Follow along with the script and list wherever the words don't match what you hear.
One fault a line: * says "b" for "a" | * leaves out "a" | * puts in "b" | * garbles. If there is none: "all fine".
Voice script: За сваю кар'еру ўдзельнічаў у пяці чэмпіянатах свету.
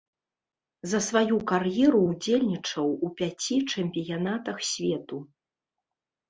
all fine